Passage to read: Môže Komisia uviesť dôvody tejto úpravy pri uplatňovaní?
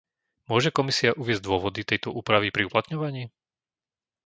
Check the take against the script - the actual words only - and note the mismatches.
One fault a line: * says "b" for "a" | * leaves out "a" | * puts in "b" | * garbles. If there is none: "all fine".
all fine